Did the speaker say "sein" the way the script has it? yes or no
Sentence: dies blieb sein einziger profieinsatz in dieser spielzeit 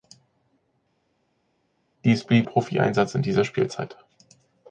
no